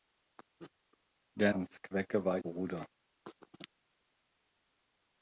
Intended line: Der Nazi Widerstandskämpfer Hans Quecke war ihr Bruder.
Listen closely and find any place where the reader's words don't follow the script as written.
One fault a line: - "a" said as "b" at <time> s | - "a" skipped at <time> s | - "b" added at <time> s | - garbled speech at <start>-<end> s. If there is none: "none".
- "Nazi Widerstandskämpfer" skipped at 1.5 s
- "ihr" skipped at 2.4 s